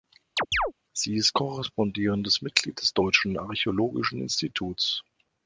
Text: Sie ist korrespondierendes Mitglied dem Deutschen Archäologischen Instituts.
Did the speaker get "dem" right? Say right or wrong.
wrong